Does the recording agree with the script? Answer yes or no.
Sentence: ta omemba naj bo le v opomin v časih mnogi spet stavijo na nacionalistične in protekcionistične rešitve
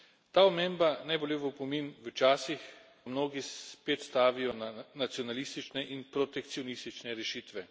yes